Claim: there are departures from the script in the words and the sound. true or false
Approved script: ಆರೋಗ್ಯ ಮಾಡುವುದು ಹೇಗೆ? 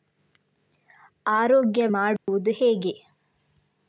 true